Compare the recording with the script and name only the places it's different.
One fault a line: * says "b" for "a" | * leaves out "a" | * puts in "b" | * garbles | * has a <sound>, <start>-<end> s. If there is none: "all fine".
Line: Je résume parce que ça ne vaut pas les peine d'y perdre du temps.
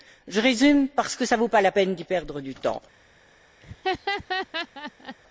* says "la" for "les"
* has a laugh, 3.6-5.2 s